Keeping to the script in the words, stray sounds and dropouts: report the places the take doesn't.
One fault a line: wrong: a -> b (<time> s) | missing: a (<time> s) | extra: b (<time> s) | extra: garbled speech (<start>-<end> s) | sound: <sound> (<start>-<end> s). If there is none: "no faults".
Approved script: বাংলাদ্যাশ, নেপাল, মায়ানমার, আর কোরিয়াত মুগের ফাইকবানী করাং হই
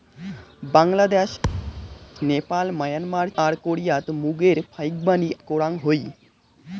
sound: thud (1.4-2.1 s)